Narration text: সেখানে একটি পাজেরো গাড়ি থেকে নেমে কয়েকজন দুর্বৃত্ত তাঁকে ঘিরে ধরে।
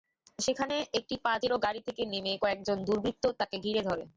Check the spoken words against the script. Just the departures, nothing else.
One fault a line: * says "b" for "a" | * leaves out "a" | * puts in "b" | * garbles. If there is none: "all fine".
all fine